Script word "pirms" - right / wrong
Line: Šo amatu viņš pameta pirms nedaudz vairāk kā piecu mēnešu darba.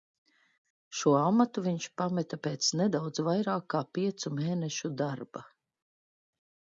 wrong